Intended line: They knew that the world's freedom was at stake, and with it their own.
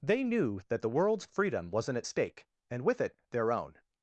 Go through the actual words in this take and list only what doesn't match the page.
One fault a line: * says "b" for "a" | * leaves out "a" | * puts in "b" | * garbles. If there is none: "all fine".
* says "wasn't" for "was"